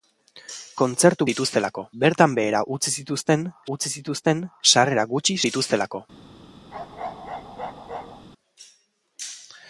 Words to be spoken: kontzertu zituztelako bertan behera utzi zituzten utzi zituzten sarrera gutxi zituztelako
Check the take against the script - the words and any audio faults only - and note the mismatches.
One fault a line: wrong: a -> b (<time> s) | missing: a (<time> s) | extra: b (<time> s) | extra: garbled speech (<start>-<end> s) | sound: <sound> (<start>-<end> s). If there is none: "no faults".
sound: bark (6.7-8.2 s)